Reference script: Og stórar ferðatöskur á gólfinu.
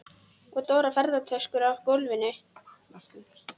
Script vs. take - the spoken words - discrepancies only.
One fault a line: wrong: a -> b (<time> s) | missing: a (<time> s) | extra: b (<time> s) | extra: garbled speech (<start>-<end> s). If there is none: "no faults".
no faults